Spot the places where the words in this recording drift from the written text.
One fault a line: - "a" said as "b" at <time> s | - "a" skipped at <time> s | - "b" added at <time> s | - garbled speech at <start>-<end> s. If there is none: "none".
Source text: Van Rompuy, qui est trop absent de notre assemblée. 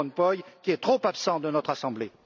none